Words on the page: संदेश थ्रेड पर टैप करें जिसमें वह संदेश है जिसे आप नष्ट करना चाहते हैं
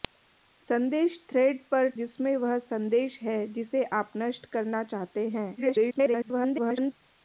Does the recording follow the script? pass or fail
fail